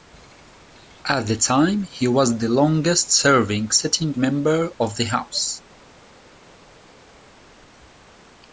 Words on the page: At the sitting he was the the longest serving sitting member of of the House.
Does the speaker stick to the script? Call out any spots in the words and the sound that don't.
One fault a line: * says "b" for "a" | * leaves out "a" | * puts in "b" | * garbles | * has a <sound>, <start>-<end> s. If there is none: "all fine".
* says "time" for "sitting"
* leaves out "the"
* leaves out "of"